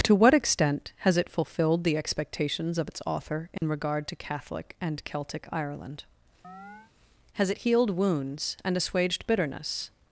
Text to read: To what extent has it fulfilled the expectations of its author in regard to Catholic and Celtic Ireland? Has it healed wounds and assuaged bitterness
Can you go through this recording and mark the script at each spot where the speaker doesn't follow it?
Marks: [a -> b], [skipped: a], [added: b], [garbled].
To what extent has it fulfilled the expectations of its author in regard to Catholic and Celtic Ireland? Has it healed wounds and assuaged bitterness